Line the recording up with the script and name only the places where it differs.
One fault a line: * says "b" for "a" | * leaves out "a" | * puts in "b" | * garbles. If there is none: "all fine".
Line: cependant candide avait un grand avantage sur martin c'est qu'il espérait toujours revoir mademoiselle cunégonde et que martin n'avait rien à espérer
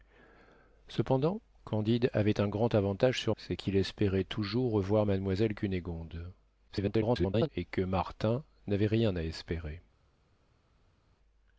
* leaves out "martin"
* garbles